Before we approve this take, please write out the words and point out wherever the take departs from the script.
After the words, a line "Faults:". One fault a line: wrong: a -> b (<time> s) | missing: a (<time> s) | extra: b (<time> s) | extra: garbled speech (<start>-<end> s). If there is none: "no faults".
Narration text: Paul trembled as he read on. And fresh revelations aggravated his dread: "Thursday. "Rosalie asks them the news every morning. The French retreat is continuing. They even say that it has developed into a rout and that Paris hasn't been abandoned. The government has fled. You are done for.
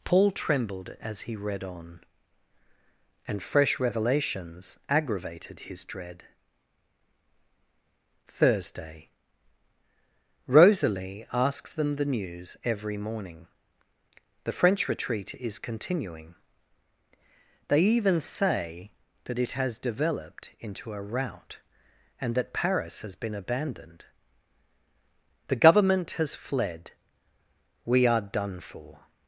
Paul trembled as he read on. And fresh revelations aggravated his dread: "Thursday. "Rosalie asks them the news every morning. The French retreat is continuing. They even say that it has developed into a rout and that Paris has been abandoned. The government has fled. We are done for.
Faults:
wrong: hasn't -> has (23.0 s)
wrong: You -> We (27.8 s)